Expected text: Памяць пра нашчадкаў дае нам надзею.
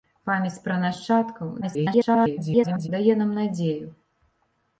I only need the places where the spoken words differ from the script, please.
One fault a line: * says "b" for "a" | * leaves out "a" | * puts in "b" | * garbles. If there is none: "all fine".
* garbles